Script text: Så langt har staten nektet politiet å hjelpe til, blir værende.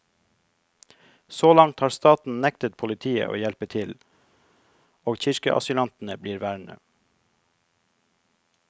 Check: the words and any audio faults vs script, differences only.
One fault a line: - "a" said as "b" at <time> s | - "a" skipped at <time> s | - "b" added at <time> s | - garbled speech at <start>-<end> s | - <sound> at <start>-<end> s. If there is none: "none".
- "og kirkeasylantene" added at 5.0 s